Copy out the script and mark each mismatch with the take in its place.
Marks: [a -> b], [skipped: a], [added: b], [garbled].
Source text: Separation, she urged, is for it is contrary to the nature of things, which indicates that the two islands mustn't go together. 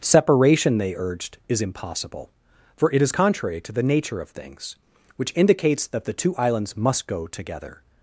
Separation, [she -> they] urged, is [added: impossible] for it is contrary to the nature of things, which indicates that the two islands [mustn't -> must] go together.